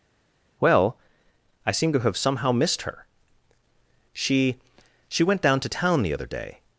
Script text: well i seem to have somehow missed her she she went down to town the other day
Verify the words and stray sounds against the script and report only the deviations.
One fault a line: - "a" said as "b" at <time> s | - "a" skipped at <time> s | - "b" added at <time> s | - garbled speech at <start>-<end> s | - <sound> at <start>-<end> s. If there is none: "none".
none